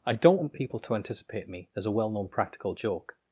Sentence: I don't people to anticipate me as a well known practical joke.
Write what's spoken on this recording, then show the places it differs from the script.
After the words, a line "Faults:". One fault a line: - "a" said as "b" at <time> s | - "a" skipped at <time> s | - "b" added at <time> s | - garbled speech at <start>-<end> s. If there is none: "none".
I don't want people to anticipate me as a well known practical joke.
Faults:
- "want" added at 0.4 s